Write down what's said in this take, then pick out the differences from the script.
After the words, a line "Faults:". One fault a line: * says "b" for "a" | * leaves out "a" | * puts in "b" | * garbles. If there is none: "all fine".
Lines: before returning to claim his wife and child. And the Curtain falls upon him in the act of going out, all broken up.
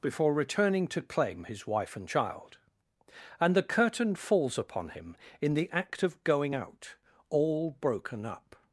before returning to claim his wife and child. And the Curtain falls upon him in the act of going out, all broken up.
Faults:
all fine